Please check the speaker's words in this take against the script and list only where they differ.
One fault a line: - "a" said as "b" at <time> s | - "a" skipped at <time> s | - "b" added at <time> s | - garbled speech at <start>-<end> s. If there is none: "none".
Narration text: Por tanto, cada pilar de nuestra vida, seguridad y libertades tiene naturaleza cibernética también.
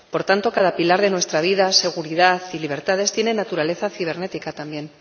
none